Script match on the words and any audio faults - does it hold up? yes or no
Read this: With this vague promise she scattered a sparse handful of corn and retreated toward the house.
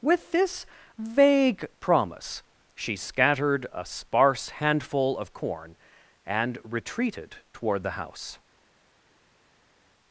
yes